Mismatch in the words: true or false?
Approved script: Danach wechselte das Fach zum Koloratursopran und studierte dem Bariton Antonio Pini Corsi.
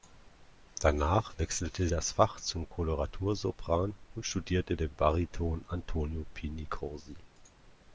false